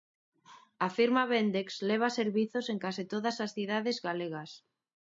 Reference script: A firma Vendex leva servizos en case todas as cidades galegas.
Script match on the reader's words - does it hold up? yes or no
yes